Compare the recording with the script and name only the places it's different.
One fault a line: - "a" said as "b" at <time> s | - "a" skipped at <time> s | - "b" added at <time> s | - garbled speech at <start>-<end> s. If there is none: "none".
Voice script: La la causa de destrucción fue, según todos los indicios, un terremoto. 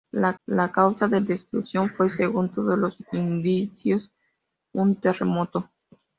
none